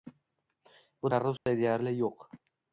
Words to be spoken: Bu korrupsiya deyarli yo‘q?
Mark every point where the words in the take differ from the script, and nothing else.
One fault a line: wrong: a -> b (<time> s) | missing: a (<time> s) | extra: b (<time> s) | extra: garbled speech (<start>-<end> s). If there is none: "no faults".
no faults